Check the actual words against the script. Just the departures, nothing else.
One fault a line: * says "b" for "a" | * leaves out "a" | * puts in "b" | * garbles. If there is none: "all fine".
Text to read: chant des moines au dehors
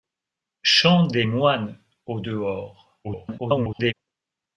* garbles